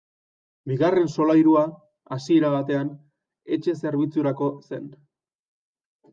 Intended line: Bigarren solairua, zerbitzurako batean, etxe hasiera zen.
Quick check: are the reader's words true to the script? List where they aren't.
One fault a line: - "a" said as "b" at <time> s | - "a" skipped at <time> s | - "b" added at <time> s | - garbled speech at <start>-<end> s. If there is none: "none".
- "zerbitzurako" said as "hasiera" at 2.2 s
- "hasiera" said as "zerbitzurako" at 3.8 s